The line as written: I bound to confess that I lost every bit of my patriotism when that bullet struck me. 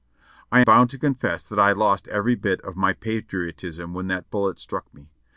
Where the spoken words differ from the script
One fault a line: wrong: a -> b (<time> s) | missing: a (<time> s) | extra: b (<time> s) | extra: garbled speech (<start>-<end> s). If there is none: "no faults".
no faults